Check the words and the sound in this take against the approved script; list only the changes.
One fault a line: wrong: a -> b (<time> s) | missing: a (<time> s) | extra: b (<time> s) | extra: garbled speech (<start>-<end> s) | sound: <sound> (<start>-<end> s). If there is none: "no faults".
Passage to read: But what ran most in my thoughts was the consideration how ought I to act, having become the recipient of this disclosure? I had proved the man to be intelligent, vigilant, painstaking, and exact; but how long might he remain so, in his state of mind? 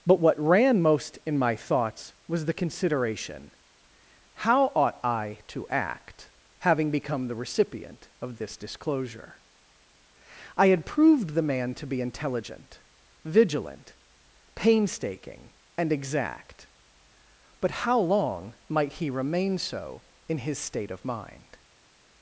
no faults